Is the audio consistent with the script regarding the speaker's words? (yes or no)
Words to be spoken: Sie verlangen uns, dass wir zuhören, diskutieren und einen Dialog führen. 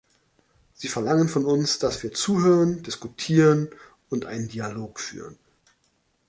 no